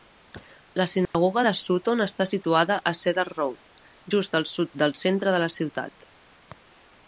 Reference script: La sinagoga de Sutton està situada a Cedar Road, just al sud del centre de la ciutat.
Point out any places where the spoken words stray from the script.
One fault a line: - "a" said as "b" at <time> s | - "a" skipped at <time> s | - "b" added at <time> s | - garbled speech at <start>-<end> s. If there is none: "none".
none